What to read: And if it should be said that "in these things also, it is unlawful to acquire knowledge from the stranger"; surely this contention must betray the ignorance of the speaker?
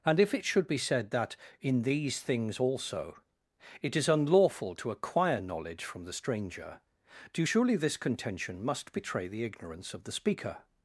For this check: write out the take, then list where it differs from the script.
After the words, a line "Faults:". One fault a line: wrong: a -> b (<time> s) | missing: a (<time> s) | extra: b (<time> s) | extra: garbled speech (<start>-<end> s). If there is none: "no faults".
And if it should be said that "in these things also, it is unlawful to acquire knowledge from the stranger"; do surely this contention must betray the ignorance of the speaker?
Faults:
extra: do (7.3 s)